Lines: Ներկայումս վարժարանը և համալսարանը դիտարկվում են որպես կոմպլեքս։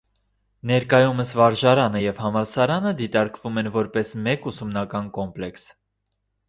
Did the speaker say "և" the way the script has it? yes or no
yes